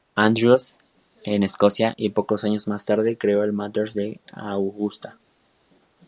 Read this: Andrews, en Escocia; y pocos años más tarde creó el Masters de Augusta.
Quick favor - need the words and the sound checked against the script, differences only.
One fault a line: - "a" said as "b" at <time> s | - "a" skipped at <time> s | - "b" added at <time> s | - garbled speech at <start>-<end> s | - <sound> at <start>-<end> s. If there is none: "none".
none